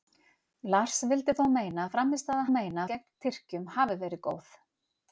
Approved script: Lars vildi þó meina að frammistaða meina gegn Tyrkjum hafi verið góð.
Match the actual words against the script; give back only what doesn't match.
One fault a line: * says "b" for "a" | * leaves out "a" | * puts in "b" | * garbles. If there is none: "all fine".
all fine